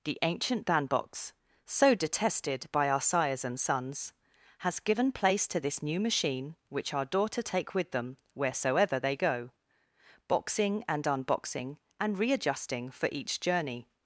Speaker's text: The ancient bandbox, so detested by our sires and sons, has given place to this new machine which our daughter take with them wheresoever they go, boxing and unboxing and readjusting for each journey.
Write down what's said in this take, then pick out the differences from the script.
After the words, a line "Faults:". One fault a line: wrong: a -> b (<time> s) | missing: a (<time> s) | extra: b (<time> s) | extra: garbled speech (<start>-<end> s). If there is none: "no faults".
The ancient bandbox, so detested by our sires and sons, has given place to this new machine which our daughter take with them wheresoever they go, boxing and unboxing and readjusting for each journey.
Faults:
no faults